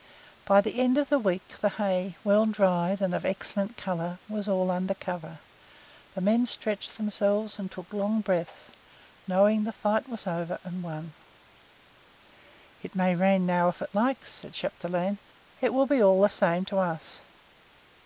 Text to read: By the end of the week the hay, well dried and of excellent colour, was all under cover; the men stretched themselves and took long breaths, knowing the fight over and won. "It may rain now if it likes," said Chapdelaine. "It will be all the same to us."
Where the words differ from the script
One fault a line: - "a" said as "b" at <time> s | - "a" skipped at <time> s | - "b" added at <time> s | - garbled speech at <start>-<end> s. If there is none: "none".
- "was" added at 10.1 s